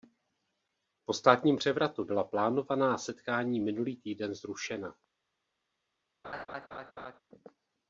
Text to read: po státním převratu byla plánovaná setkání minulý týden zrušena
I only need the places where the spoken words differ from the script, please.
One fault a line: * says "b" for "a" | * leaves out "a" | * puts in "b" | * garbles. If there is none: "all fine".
all fine